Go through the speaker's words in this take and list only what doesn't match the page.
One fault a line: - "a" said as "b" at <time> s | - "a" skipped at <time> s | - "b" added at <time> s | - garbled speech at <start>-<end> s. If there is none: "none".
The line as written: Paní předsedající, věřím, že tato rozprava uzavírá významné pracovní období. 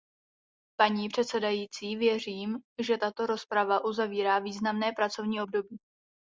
none